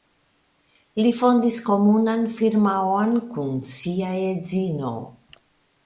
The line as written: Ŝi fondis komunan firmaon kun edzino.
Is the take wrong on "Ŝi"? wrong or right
wrong